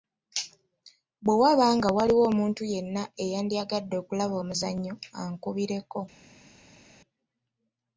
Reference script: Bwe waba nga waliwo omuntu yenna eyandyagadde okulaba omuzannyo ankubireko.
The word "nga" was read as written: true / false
true